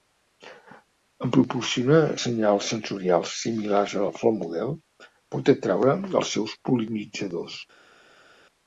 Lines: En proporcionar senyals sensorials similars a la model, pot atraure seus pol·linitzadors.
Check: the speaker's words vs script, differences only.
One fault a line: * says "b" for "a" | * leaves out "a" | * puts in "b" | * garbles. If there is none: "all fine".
* puts in "flor"
* puts in "els"